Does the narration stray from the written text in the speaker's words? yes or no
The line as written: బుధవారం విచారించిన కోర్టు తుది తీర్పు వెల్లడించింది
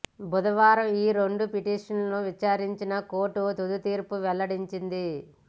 yes